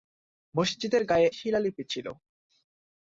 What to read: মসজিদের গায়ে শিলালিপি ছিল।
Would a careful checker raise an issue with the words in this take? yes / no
no